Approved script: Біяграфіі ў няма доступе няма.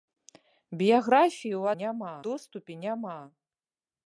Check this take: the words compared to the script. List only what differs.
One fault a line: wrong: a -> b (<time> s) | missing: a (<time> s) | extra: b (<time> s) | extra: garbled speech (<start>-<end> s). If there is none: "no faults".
no faults